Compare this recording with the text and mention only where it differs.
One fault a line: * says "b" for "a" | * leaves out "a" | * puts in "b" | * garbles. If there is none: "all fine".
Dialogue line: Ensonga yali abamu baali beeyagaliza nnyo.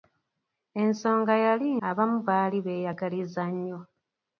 all fine